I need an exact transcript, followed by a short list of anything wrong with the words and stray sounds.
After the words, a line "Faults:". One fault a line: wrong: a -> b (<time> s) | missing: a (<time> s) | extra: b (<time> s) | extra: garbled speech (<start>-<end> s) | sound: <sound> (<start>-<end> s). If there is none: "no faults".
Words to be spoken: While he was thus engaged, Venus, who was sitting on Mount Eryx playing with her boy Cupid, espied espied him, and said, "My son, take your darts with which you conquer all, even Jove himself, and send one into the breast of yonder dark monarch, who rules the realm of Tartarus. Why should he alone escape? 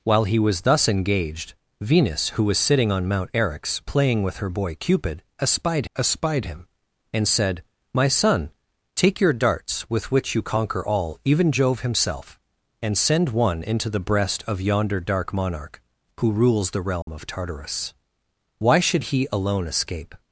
While he was thus engaged, Venus, who was sitting on Mount Eryx playing with her boy Cupid, espied espied him, and said, "My son, take your darts with which you conquer all, even Jove himself, and send one into the breast of yonder dark monarch, who rules the realm of Tartarus. Why should he alone escape?
Faults:
sound: dropout (17.0-17.1 s)